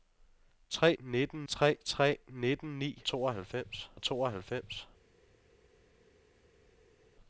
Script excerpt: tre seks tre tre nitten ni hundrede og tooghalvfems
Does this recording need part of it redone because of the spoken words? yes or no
yes